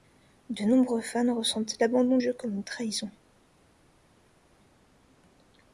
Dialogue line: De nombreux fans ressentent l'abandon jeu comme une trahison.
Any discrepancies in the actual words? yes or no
no